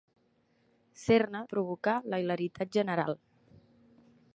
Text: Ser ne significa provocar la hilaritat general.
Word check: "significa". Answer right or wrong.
wrong